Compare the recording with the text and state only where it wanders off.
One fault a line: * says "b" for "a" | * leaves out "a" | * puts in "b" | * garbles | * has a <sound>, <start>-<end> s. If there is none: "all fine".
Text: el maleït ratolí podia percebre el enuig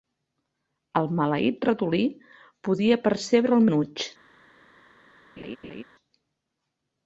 * has a laugh, 5.4-5.8 s